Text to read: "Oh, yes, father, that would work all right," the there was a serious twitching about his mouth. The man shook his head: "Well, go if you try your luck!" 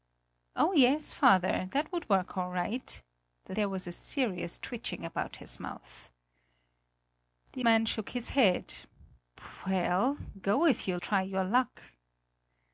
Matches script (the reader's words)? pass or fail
pass